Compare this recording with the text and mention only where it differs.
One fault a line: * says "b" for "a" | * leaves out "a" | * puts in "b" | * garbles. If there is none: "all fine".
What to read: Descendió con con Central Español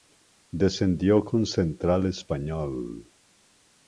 * leaves out "con"